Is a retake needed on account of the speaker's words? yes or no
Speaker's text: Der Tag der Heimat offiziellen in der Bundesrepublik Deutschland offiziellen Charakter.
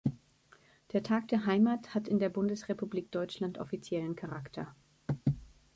yes